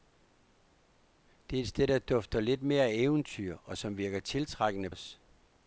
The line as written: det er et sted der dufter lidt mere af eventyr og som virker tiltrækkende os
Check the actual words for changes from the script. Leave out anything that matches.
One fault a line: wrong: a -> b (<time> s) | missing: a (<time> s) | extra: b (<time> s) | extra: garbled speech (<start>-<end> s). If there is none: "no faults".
no faults